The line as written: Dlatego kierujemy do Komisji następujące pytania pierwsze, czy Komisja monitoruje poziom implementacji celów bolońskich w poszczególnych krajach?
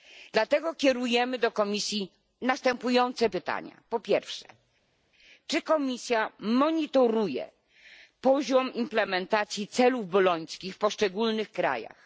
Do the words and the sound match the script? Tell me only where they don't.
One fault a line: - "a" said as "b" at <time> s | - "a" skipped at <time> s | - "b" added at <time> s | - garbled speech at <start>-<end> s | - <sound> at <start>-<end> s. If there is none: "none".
- "po" added at 3.9 s